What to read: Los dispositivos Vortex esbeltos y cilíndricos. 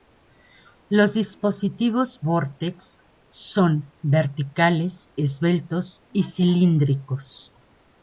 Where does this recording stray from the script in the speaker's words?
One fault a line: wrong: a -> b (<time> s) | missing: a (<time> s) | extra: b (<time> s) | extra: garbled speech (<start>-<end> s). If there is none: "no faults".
extra: son verticales (3.3 s)